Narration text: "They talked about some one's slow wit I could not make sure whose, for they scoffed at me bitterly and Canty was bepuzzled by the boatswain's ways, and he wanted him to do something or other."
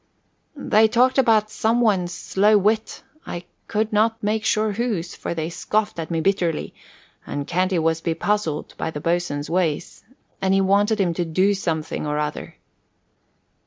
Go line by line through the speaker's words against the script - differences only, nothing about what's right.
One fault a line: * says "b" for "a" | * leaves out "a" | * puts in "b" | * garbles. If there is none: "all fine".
all fine